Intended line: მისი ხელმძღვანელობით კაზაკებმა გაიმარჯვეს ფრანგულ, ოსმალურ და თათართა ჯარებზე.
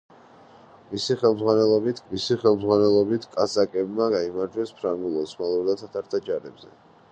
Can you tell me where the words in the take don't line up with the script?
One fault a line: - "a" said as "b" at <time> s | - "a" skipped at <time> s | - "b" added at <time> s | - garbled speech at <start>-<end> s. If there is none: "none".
- "მისი ხელმძღვანელობით" added at 2.1 s